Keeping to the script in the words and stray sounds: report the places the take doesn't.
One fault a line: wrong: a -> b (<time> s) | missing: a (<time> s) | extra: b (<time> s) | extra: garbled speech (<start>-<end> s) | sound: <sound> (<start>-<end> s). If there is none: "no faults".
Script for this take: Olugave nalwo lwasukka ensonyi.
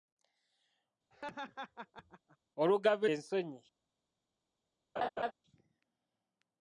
sound: laugh (1.1-2.4 s)
missing: nalwo lwasukka (3.1 s)
sound: laugh (5.0-5.3 s)